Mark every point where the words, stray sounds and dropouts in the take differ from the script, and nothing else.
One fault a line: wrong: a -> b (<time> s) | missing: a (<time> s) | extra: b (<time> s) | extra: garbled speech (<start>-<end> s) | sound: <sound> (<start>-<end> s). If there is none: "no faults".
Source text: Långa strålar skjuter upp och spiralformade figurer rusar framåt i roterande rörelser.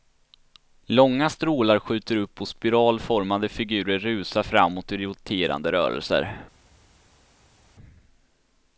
no faults